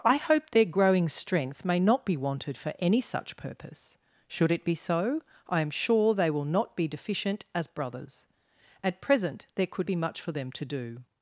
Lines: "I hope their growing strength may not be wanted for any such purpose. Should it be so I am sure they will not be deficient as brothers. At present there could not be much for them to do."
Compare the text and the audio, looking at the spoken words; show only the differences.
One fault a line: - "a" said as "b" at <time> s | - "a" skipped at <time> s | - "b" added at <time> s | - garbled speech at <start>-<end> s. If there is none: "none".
- "not" skipped at 9.9 s